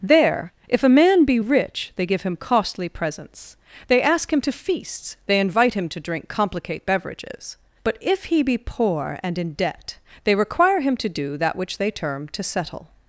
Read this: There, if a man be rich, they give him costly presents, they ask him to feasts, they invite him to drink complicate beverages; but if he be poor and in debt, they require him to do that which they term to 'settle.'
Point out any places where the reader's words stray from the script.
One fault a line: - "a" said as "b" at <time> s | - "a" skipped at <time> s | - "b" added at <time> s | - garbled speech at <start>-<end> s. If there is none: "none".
none